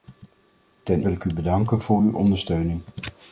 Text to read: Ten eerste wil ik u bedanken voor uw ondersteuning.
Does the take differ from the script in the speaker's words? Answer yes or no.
yes